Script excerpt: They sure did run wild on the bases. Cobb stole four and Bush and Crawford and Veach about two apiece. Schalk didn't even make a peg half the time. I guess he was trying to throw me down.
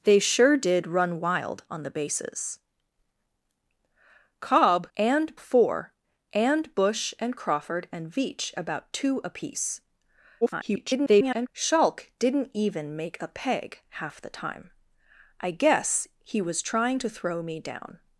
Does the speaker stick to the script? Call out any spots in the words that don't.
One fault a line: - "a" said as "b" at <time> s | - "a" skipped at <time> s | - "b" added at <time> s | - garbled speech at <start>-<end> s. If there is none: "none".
- "stole" said as "and" at 5.0 s
- garbled speech at 10.4-11.5 s